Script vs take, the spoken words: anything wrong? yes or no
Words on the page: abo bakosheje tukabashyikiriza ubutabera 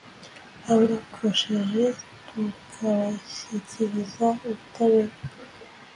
no